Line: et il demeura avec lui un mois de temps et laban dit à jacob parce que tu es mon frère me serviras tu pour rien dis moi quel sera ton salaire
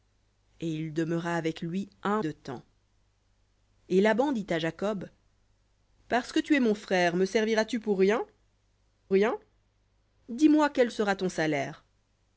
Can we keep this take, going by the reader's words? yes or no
no